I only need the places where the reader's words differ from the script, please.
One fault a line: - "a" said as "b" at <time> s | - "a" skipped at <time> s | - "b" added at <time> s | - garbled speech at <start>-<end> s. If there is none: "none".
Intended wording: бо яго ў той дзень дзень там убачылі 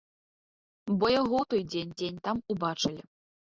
none